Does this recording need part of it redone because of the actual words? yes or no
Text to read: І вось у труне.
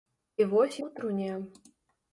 no